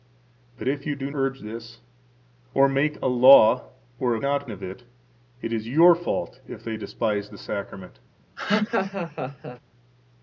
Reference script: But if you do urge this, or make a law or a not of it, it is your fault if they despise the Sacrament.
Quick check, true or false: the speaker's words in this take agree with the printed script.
true